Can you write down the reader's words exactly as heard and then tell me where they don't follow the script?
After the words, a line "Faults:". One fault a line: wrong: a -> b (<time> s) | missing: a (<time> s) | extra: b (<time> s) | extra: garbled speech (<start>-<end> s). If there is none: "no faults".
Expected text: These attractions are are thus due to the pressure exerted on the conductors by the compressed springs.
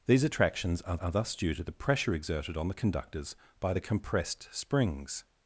These attractions are are thus due to the pressure exerted on the conductors by the compressed springs.
Faults:
no faults